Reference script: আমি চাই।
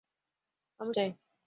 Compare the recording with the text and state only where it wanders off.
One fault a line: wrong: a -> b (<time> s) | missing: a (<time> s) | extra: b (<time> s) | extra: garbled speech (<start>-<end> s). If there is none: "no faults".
no faults